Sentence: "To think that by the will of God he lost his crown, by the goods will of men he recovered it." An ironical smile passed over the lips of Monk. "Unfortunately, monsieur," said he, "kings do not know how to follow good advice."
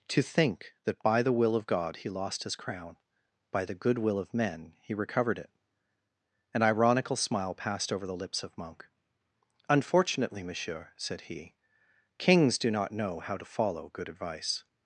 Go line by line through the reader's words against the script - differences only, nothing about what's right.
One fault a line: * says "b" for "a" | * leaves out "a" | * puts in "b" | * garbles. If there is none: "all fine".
* says "good" for "goods"